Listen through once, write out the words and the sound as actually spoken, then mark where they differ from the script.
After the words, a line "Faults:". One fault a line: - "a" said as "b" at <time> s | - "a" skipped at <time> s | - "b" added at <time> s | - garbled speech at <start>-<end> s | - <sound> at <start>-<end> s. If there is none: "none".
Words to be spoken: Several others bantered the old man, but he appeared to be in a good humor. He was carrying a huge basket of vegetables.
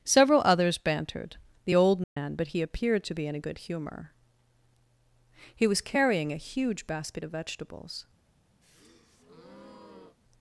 Several others bantered the old man, but he appeared to be in a good humor. He was carrying a huge basket of vegetables.
Faults:
- dropout at 2.0-2.2 s
- breath at 8.6-10.2 s